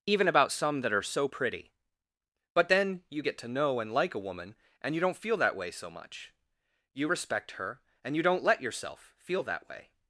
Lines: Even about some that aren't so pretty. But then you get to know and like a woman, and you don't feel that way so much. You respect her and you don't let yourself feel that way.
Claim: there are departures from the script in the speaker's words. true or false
true